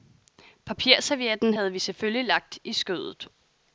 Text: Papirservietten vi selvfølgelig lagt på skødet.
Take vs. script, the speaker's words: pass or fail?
fail